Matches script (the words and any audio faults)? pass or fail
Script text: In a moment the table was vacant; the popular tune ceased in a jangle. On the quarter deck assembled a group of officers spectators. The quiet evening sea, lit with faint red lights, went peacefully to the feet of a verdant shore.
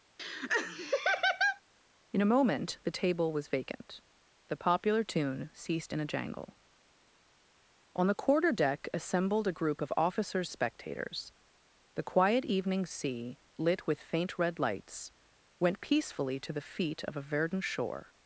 fail